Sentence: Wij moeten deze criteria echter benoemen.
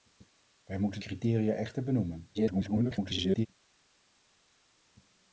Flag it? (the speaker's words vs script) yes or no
yes